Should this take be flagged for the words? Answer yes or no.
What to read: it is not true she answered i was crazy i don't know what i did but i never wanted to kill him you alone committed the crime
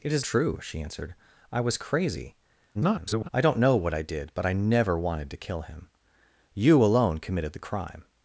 yes